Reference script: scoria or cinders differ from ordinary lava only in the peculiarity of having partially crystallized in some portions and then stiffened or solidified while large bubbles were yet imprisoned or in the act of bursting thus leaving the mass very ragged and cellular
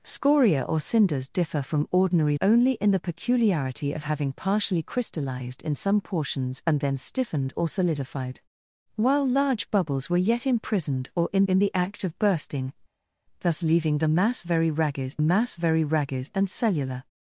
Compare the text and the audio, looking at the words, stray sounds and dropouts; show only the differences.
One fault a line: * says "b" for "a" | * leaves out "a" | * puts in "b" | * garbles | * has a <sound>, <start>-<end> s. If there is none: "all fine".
* leaves out "lava"
* puts in "in"
* puts in "mass very ragged"